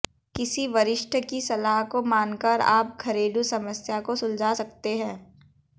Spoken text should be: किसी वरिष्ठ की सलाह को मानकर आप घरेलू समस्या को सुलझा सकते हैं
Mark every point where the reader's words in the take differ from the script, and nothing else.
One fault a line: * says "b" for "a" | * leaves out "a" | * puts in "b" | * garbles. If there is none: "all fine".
all fine